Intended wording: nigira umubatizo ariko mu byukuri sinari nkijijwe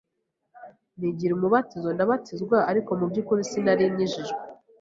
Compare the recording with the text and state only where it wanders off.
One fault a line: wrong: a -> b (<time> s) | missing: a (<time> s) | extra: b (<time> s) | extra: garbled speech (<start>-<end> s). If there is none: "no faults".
extra: ndabatizwa (1.9 s)